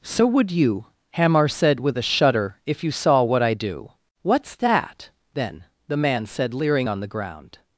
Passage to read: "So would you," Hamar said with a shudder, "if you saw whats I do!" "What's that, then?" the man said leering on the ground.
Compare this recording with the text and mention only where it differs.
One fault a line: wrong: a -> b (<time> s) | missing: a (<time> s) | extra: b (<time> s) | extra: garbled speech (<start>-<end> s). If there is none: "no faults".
wrong: whats -> what (3.2 s)